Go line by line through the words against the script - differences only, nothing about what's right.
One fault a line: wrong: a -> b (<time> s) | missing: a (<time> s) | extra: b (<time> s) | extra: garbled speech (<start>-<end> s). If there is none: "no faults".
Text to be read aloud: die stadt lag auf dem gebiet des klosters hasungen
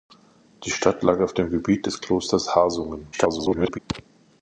extra: garbled speech (3.1-3.8 s)